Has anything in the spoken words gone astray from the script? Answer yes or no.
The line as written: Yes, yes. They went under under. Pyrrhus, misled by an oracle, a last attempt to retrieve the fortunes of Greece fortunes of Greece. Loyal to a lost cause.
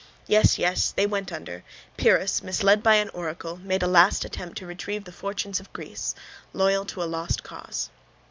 yes